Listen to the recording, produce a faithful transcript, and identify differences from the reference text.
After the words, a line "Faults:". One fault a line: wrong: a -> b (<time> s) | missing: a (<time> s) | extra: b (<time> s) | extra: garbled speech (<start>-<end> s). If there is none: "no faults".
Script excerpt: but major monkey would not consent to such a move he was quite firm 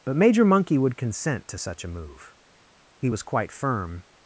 but major monkey would consent to such a move he was quite firm
Faults:
missing: not (1.0 s)